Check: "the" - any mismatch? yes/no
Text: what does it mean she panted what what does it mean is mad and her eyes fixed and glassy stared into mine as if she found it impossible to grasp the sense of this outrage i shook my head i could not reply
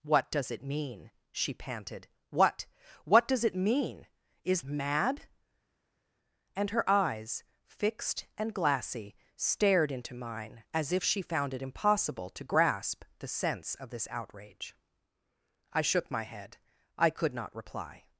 no